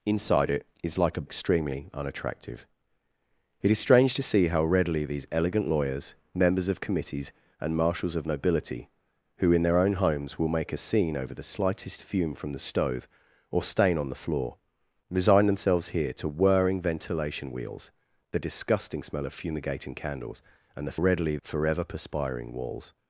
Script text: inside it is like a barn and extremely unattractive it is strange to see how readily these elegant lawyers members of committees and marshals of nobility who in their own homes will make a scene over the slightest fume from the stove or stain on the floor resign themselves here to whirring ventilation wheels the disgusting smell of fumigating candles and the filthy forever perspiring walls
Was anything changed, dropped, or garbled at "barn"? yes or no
yes